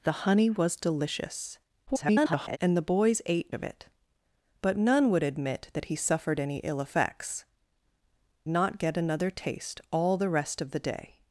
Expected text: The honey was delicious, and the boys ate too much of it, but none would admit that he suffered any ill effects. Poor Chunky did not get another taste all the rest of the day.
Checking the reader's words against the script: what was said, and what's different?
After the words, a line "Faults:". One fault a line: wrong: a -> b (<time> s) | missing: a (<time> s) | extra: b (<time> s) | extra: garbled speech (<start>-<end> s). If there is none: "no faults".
The honey was delicious, [garbled] and the boys ate of it, but none would admit that he suffered any ill effects. Not get another taste all the rest of the day.
Faults:
extra: garbled speech (1.9-2.6 s)
missing: too much (3.5 s)
missing: Poor Chunky did (7.4 s)